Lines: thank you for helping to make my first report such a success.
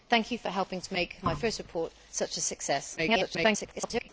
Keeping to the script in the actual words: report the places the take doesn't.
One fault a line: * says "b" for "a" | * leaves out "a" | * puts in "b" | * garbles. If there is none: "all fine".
* garbles